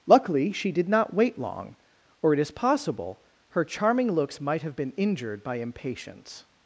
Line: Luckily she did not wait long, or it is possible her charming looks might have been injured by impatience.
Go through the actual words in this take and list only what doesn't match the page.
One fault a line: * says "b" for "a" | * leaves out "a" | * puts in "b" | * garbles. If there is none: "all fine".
all fine